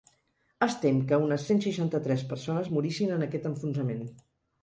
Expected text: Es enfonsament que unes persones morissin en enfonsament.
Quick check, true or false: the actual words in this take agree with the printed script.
false